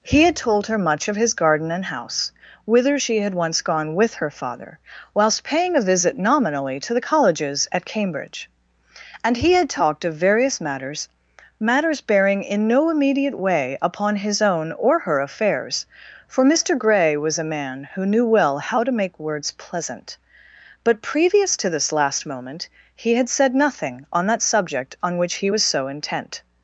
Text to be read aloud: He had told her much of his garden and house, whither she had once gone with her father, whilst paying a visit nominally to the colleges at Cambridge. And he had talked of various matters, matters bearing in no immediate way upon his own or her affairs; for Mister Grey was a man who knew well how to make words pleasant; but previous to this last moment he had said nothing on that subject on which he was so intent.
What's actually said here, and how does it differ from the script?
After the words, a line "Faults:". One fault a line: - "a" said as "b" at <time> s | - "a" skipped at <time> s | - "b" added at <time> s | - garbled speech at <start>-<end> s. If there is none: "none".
He had told her much of his garden and house, whither she had once gone with her father, whilst paying a visit nominally to the colleges at Cambridge. And he had talked of various matters, matters bearing in no immediate way upon his own or her affairs; for Mister Grey was a man who knew well how to make words pleasant; but previous to this last moment he had said nothing on that subject on which he was so intent.
Faults:
none